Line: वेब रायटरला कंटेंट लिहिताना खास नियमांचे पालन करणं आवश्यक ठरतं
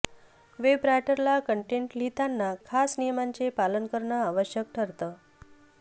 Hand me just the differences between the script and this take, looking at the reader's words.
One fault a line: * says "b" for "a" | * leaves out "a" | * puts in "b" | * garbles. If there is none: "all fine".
all fine